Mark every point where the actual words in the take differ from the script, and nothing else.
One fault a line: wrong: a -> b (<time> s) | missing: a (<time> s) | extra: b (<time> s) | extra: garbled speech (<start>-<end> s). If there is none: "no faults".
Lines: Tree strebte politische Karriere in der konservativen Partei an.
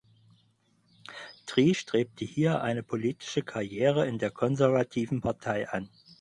extra: hier eine (2.2 s)